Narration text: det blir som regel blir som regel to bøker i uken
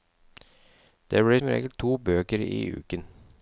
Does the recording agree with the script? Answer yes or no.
no